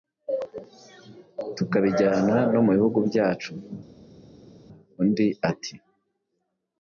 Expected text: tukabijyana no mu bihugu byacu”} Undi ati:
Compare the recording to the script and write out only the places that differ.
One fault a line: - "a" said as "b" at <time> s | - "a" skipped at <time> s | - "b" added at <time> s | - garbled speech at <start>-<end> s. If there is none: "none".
none